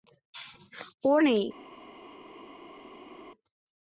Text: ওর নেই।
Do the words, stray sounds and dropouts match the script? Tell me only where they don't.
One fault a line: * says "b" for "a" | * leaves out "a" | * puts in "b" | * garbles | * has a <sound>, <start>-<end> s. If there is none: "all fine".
all fine